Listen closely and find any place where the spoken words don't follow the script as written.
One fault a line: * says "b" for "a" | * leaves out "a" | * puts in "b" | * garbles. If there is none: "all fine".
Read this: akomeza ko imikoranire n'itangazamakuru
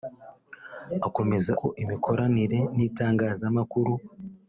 all fine